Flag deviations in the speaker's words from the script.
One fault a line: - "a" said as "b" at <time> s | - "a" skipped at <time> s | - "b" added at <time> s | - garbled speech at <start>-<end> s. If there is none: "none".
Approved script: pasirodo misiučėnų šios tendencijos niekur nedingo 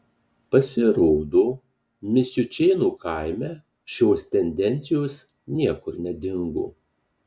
- "kaime" added at 3.0 s